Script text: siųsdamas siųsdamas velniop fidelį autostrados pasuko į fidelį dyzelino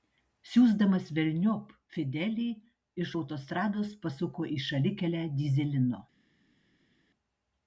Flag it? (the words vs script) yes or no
yes